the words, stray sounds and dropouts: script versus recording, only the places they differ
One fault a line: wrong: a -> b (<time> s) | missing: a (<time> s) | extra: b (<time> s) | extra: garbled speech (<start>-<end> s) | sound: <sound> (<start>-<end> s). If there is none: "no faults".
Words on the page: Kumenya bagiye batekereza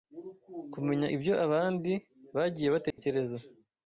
extra: ibyo abandi (1.1 s)
sound: dropout (2.9-3.0 s)